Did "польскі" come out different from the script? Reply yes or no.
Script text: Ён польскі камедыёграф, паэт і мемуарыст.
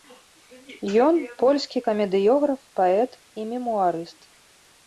no